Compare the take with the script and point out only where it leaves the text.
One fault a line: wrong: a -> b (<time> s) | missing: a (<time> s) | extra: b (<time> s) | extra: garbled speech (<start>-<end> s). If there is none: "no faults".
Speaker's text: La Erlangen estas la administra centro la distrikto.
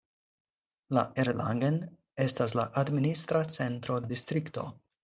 no faults